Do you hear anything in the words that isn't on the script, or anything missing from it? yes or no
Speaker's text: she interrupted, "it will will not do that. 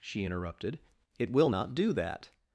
yes